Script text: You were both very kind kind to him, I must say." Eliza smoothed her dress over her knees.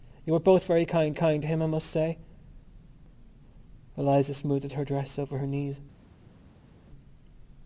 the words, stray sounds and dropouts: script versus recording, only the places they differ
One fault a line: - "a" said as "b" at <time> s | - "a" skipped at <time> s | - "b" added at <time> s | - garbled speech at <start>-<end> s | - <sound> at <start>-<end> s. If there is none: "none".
none